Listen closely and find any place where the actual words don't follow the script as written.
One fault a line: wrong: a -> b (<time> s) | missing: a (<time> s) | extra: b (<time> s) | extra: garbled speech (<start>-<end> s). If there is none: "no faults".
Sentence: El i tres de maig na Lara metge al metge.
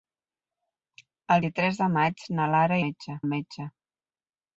no faults